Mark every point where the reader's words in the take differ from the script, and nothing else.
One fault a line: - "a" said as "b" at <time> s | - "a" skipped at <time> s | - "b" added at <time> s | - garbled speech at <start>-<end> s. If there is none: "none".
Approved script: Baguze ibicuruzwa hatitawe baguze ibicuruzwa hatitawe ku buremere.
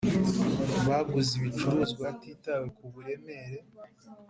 - "baguze ibicuruzwa hatitawe" skipped at 2.7 s